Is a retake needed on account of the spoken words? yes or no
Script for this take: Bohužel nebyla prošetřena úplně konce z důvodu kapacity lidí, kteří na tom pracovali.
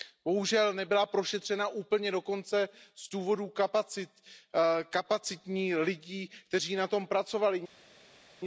yes